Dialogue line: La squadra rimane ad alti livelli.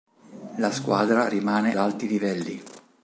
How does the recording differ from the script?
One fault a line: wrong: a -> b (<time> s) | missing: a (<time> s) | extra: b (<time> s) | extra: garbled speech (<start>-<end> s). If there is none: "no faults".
missing: ad (1.8 s)